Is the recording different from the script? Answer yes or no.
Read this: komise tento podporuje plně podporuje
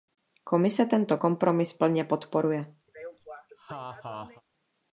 yes